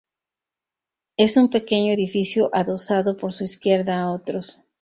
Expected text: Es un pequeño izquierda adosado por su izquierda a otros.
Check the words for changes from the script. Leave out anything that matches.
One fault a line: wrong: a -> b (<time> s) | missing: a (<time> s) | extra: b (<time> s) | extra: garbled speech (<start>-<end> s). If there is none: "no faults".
wrong: izquierda -> edificio (1.9 s)